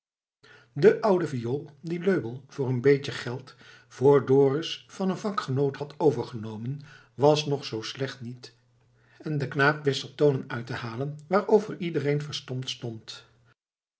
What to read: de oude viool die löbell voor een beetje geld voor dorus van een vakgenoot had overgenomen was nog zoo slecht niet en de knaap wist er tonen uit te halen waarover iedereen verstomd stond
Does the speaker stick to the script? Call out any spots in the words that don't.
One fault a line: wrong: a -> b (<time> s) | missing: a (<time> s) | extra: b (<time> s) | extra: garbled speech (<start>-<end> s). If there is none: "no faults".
no faults